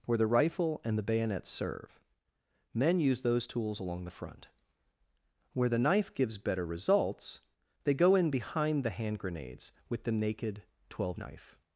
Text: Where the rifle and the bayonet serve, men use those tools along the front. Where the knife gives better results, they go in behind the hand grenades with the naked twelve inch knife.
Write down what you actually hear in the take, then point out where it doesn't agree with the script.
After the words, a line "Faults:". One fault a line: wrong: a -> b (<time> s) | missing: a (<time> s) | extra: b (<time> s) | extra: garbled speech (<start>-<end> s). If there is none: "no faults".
Where the rifle and the bayonet serve, men use those tools along the front. Where the knife gives better results, they go in behind the hand grenades with the naked twelve knife.
Faults:
missing: inch (11.2 s)